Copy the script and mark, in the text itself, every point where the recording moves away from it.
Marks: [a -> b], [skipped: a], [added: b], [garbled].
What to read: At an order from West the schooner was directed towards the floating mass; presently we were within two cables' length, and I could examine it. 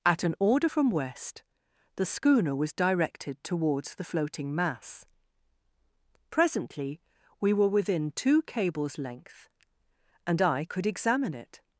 At an order from West the schooner was directed towards the floating mass; presently we were within two cables' length, and I could examine it.